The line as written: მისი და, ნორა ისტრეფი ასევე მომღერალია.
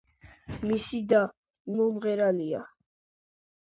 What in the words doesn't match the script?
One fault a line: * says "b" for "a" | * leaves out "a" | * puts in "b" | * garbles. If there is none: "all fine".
* leaves out "ნორა ისტრეფი ასევე"